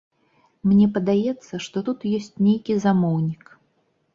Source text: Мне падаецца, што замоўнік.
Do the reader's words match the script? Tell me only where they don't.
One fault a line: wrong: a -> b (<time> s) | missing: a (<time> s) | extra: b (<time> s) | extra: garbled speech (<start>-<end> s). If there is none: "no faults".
extra: тут ёсць нейкі (1.9 s)